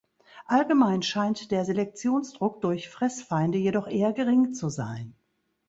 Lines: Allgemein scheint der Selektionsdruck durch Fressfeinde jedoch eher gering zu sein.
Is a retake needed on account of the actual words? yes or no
no